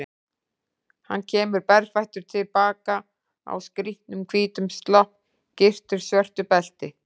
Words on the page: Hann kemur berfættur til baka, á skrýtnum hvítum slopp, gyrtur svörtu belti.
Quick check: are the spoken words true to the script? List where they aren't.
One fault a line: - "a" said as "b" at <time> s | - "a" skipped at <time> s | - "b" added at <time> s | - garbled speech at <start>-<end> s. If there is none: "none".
none